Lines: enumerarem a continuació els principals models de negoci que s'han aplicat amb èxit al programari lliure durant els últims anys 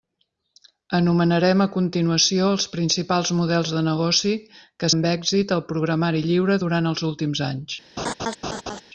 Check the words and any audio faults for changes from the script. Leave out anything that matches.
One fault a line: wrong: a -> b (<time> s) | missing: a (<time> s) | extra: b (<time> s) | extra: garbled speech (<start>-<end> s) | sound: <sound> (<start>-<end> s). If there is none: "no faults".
missing: s'han aplicat (4.9 s)
sound: laugh (8.0-8.8 s)